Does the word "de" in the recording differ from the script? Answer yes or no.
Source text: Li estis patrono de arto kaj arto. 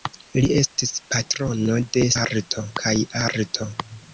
no